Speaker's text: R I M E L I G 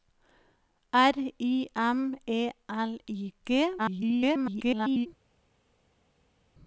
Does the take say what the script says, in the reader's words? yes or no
no